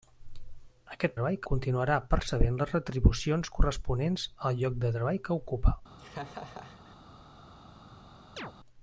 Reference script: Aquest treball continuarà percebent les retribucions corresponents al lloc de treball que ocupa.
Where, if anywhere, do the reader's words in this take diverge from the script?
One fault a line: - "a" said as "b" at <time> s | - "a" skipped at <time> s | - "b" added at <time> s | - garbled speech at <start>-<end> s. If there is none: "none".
none